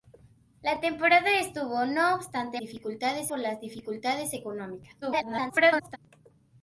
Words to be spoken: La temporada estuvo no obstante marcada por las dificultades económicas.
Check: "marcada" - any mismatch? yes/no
yes